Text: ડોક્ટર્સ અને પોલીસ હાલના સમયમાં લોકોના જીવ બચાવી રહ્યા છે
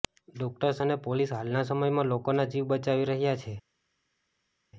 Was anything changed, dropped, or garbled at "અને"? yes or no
no